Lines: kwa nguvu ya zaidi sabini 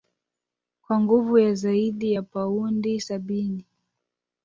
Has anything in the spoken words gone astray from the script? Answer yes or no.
yes